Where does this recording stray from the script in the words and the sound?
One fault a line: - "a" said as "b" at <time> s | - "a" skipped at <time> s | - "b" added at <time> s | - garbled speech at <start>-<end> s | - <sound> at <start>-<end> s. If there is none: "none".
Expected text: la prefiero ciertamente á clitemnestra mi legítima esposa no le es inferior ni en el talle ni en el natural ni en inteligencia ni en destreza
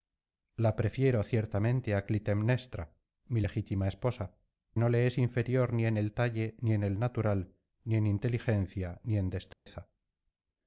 - dropout at 9.5-9.7 s